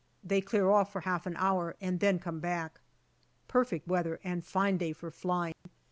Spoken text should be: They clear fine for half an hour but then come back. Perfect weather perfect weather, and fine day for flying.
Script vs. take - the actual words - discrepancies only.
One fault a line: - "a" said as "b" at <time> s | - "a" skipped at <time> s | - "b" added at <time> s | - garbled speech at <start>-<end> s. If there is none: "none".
- "fine" said as "off" at 0.7 s
- "but" said as "and" at 1.8 s
- "perfect weather" skipped at 4.2 s